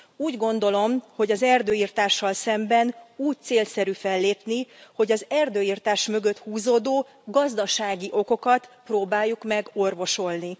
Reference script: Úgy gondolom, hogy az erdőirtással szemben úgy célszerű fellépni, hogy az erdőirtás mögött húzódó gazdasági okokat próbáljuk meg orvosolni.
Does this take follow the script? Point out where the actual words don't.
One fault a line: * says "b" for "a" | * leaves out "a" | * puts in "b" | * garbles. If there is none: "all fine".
all fine